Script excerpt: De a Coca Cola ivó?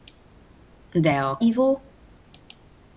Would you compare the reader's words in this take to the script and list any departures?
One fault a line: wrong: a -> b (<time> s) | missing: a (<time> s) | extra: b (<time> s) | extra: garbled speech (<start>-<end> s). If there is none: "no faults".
missing: Coca Cola (1.4 s)